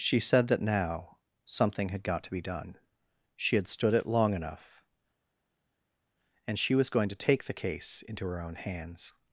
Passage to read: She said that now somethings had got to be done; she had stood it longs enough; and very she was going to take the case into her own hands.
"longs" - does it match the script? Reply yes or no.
no